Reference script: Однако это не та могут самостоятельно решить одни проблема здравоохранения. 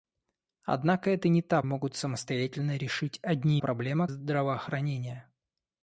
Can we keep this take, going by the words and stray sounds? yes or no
yes